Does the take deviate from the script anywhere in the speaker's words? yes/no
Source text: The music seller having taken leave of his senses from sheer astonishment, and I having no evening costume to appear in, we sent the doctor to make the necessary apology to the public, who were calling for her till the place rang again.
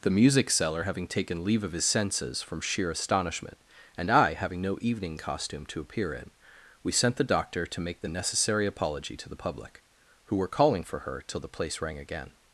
no